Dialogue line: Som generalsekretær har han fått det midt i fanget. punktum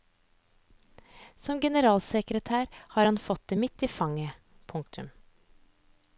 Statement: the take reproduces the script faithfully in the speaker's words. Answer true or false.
true